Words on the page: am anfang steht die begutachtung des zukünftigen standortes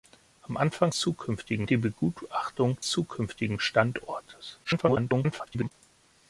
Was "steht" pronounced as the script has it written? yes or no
no